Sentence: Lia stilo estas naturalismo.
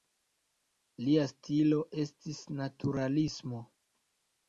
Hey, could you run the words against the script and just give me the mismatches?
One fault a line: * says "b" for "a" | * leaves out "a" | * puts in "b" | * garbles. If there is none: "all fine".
* says "estis" for "estas"